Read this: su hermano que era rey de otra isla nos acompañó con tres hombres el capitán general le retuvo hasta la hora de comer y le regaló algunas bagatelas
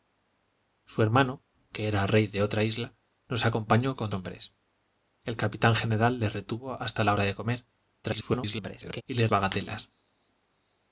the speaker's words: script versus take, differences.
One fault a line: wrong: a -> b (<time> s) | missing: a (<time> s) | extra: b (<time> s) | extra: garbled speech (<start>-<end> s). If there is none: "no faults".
missing: tres (4.1 s)
extra: garbled speech (8.0-9.0 s)
missing: regaló algunas (9.3 s)